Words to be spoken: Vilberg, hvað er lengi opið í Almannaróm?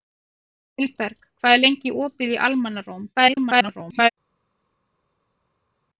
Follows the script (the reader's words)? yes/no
no